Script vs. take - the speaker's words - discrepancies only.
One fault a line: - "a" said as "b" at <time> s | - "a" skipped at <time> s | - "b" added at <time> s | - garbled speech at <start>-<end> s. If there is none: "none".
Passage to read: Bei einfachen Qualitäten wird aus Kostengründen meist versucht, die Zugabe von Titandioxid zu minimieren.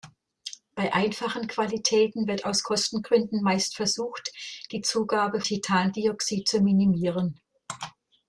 - "von" skipped at 5.4 s